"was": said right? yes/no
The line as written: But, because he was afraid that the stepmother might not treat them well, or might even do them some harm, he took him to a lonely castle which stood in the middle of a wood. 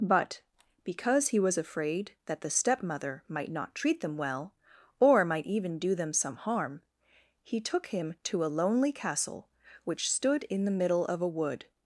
yes